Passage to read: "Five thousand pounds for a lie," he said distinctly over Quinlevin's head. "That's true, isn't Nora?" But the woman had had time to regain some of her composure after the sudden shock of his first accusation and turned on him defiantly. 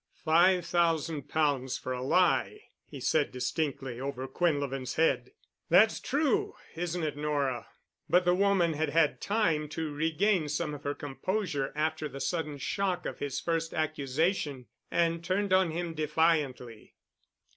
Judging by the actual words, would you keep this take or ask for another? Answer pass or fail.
fail